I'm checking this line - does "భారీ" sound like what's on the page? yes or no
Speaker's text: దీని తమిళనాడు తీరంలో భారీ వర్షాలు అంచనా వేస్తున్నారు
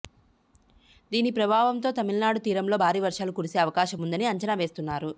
yes